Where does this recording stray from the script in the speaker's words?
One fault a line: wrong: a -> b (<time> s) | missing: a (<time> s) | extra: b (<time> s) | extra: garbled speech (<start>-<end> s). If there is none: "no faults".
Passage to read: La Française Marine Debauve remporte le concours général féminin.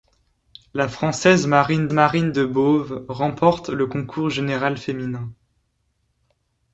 extra: Marine (1.9 s)